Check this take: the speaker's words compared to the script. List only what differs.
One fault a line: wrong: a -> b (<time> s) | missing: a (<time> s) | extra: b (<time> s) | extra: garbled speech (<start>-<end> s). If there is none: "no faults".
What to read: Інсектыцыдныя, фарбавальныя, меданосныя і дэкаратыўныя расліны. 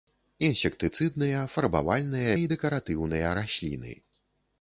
missing: меданосныя (2.3 s)